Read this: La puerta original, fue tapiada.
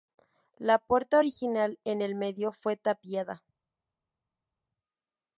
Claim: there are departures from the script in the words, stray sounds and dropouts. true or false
true